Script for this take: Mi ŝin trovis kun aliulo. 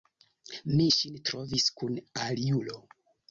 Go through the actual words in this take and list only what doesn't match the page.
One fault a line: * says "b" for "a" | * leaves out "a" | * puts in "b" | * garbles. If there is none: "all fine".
all fine